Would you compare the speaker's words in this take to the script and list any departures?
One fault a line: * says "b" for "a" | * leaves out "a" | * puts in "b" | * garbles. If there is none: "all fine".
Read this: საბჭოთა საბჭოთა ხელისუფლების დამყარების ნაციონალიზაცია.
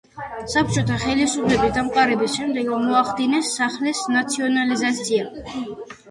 * leaves out "საბჭოთა"
* puts in "შემდეგ მოახდინეს სახლის"